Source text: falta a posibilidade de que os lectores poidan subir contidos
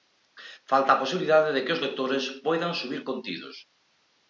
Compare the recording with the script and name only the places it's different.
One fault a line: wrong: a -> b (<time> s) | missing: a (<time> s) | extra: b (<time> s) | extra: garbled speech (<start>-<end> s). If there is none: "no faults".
no faults